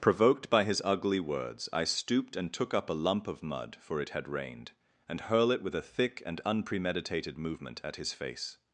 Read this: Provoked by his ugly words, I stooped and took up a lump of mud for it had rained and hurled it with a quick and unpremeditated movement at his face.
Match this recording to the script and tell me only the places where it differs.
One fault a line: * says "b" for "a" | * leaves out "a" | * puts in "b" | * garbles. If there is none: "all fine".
* says "hurl" for "hurled"
* says "thick" for "quick"